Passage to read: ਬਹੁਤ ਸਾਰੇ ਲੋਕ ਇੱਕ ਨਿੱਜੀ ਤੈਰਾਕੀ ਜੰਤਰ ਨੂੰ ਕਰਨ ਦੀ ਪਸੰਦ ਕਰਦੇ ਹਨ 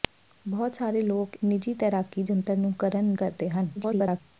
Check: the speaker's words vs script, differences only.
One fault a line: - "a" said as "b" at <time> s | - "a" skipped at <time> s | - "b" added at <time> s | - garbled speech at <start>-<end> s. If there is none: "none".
- "ਇੱਕ" skipped at 1.4 s
- "ਦੀ ਪਸੰਦ" skipped at 3.1 s
- garbled speech at 3.8-4.2 s